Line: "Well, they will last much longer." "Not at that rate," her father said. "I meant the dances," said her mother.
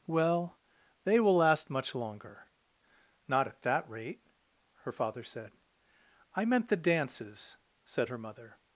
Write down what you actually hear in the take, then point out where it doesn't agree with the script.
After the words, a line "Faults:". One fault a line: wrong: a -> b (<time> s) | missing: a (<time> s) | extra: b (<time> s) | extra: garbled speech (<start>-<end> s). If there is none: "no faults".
"Well, they will last much longer." "Not at that rate," her father said. "I meant the dances," said her mother.
Faults:
no faults